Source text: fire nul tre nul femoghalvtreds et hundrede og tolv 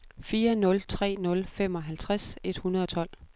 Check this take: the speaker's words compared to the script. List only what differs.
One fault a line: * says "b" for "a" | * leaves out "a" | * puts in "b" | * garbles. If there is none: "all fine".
all fine